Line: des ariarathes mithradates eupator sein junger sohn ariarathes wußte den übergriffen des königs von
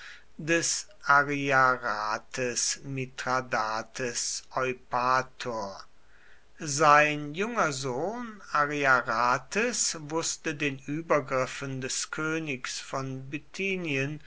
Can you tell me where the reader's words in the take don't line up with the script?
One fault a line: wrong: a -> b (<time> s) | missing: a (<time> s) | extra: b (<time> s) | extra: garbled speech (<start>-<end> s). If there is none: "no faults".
no faults